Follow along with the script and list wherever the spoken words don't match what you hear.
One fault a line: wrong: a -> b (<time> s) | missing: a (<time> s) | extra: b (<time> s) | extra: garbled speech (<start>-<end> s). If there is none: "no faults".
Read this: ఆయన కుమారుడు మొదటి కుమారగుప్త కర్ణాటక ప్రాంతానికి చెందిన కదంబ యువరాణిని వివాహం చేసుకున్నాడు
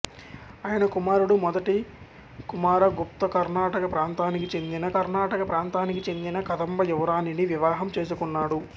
extra: కర్ణాటక ప్రాంతానికి చెందిన (4.9 s)